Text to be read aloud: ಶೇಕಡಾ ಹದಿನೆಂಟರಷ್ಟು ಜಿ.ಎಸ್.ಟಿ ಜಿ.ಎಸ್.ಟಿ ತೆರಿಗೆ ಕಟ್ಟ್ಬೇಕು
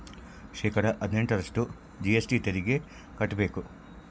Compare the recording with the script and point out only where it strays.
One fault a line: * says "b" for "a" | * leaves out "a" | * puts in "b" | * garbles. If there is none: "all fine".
* leaves out "ಜಿ.ಎಸ್.ಟಿ"